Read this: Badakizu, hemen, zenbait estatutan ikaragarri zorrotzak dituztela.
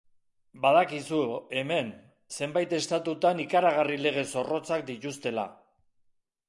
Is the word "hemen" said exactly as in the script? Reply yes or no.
yes